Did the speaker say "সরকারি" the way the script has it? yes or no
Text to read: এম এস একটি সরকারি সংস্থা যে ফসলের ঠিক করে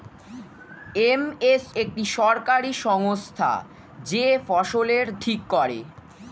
yes